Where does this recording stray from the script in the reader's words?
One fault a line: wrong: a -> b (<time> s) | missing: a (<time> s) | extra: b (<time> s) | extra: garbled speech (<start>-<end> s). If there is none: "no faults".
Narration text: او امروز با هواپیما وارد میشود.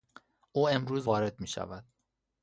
missing: با هواپیما (1.1 s)